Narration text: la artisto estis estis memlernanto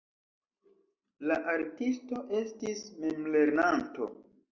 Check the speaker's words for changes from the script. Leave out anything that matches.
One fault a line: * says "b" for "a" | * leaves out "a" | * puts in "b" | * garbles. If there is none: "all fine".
* leaves out "estis"